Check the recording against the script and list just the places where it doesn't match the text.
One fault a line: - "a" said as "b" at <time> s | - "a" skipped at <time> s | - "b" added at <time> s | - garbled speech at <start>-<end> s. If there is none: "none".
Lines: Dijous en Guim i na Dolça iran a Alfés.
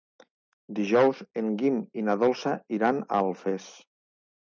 none